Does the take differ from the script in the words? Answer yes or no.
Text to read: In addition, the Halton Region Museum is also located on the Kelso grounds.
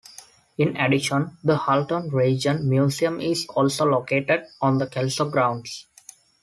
no